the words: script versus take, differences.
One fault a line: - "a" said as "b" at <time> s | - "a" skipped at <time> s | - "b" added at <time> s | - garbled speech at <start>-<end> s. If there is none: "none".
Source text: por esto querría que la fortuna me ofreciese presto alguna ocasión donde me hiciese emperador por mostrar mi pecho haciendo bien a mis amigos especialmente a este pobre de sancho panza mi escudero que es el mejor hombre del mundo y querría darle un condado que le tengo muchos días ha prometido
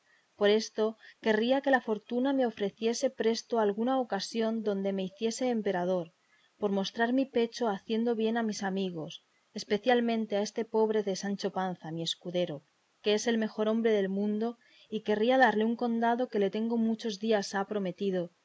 none